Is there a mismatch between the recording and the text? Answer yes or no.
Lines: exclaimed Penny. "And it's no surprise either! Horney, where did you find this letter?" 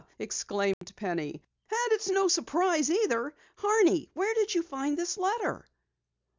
no